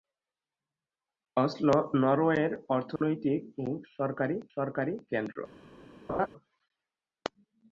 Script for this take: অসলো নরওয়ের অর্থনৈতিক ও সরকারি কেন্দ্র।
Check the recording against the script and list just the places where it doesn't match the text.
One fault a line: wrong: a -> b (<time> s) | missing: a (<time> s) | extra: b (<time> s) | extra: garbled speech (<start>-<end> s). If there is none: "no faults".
extra: সরকারি (4.5 s)